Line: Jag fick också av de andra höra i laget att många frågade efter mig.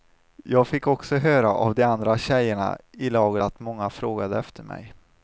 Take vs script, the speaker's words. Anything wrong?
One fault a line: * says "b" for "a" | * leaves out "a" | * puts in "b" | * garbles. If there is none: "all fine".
* puts in "höra"
* says "tjejerna" for "höra"